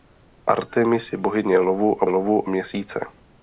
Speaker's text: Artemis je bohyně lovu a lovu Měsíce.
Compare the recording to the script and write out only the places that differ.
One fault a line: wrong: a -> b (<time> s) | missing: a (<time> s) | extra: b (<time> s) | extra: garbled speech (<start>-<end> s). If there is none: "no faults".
no faults